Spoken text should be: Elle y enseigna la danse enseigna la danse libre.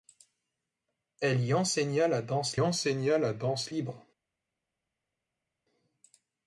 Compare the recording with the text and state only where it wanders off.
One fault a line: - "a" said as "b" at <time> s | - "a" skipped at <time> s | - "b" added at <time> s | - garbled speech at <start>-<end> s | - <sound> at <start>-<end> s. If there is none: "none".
none